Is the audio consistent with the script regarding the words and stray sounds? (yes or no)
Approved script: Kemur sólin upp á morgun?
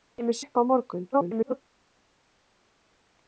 no